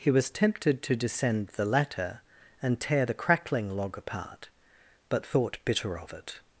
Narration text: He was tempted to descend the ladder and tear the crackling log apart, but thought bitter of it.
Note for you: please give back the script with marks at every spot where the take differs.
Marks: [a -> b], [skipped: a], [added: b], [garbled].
He was tempted to descend the ladder and tear the crackling log apart, but thought bitter of it.